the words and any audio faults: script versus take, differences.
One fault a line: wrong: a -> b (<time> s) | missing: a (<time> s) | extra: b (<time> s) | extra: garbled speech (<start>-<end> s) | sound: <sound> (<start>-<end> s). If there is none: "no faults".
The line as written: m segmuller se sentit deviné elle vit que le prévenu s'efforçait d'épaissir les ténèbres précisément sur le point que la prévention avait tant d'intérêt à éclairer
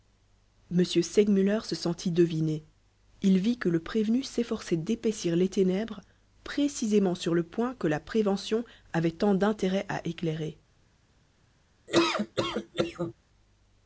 wrong: elle -> il (3.2 s)
sound: laugh (11.9-13.1 s)